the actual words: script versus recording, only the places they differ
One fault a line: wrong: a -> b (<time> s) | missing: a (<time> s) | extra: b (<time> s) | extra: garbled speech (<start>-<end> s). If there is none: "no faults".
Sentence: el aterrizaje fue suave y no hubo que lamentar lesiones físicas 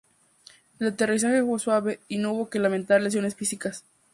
no faults